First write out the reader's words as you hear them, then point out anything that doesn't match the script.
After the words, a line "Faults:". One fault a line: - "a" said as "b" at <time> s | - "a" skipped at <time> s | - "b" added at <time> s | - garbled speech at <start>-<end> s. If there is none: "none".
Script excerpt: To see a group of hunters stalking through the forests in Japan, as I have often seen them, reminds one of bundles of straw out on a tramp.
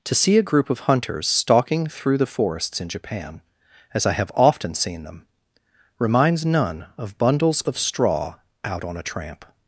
To see a group of hunters stalking through the forests in Japan, as I have often seen them, reminds none of bundles of straw out on a tramp.
Faults:
- "one" said as "none" at 6.5 s